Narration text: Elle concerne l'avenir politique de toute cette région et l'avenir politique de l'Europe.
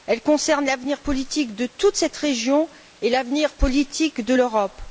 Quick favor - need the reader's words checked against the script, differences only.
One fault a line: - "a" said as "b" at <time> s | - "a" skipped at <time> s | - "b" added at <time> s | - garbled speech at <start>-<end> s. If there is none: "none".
none